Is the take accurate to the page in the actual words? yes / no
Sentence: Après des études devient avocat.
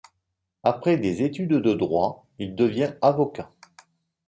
no